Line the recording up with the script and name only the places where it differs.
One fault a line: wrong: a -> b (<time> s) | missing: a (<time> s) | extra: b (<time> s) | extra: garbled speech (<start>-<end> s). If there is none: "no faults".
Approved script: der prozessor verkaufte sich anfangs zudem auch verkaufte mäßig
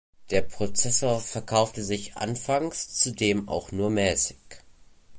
wrong: verkaufte -> nur (3.7 s)